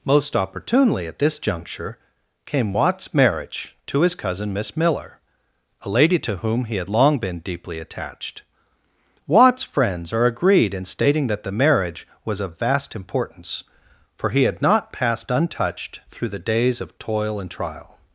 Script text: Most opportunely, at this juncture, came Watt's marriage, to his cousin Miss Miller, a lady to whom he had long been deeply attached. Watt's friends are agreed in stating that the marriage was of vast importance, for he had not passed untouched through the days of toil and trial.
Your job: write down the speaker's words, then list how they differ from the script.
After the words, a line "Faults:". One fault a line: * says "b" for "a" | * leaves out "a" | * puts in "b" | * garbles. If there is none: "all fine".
Most opportunely, at this juncture, came Watt's marriage, to his cousin Miss Miller, a lady to whom he had long been deeply attached. Watt's friends are agreed in stating that the marriage was of vast importance, for he had not passed untouched through the days of toil and trial.
Faults:
all fine